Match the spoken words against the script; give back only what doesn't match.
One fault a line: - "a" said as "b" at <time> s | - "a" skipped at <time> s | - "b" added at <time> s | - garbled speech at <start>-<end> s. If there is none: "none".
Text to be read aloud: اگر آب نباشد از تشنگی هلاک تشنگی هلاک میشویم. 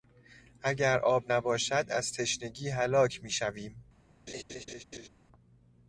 - "تشنگی هلاک" skipped at 3.2 s